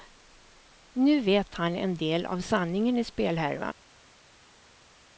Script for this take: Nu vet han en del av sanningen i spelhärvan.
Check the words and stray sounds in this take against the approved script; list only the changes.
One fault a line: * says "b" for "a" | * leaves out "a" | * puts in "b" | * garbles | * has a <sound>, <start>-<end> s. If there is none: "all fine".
all fine